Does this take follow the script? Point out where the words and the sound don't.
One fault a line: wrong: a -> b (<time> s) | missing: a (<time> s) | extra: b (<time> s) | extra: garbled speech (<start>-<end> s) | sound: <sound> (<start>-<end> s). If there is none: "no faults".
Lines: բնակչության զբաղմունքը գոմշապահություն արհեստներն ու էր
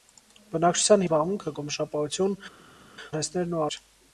no faults